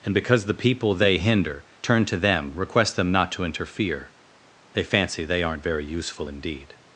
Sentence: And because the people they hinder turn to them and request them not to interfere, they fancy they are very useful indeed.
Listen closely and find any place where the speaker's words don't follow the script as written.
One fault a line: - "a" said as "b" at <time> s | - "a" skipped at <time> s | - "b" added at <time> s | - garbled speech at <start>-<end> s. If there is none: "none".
- "and" skipped at 2.5 s
- "are" said as "aren't" at 5.4 s